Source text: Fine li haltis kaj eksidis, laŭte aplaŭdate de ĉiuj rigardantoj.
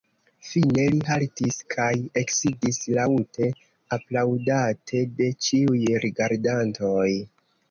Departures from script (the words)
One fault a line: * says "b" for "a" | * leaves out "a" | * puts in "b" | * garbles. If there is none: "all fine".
all fine